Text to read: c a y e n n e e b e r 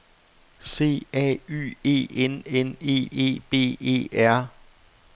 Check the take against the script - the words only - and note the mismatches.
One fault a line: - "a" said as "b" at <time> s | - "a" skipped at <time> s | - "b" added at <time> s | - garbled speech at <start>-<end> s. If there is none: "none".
none